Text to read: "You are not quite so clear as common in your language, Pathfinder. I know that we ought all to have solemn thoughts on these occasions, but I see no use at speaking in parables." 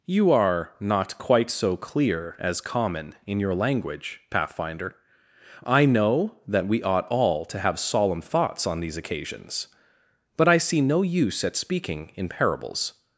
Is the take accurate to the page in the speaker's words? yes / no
yes